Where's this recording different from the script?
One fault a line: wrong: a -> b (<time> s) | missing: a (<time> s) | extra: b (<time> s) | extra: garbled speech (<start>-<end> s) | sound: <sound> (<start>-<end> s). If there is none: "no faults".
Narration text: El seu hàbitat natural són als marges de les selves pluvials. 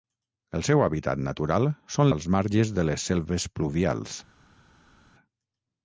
no faults